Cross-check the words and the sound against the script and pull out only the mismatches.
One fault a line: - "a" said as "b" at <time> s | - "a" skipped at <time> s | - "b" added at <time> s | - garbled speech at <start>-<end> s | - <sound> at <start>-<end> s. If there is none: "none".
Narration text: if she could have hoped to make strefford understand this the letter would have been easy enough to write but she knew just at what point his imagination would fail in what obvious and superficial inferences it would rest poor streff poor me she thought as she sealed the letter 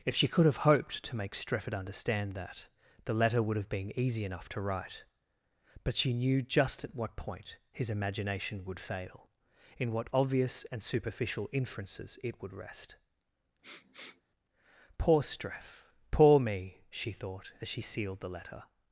- "this" said as "that" at 2.3 s
- sniff at 13.6-14.2 s